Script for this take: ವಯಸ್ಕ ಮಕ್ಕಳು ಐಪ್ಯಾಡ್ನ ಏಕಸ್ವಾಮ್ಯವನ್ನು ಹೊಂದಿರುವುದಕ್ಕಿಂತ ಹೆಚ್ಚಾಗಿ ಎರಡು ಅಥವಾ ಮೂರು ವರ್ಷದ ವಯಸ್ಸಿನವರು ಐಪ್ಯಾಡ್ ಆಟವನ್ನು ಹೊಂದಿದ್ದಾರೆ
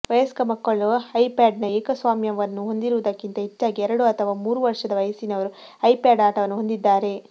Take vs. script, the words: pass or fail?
pass